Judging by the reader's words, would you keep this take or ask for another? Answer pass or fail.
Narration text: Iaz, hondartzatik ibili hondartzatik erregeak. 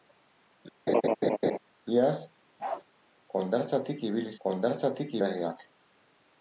pass